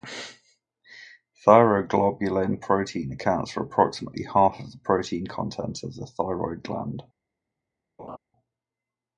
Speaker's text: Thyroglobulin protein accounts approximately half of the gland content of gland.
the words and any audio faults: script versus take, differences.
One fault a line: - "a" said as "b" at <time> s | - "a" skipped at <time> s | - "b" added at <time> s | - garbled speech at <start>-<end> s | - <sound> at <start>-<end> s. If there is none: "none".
- "for" added at 3.5 s
- "gland" said as "protein" at 4.8 s
- "the thyroid" added at 6.0 s
- laugh at 8.0-8.2 s